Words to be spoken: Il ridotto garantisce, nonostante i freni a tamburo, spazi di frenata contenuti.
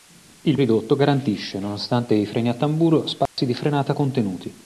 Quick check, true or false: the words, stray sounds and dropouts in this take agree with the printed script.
false